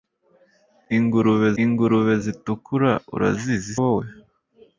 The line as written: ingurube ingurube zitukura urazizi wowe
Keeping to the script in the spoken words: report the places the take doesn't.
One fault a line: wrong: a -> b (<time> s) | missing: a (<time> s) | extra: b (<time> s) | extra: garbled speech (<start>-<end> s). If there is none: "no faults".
no faults